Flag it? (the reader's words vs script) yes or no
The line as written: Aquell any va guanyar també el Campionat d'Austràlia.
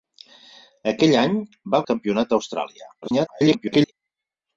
yes